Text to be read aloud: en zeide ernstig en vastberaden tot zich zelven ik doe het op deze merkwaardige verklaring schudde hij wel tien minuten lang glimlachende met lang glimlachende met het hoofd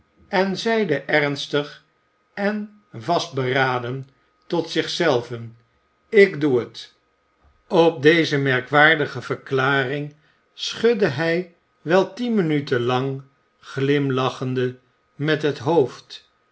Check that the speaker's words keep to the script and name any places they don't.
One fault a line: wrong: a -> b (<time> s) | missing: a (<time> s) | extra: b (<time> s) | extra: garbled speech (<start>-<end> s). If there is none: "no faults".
missing: lang glimlachende met (15.4 s)